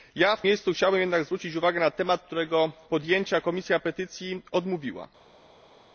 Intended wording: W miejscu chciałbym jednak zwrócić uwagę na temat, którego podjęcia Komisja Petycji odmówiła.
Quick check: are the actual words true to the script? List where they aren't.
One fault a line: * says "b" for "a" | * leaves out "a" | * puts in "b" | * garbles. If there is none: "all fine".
all fine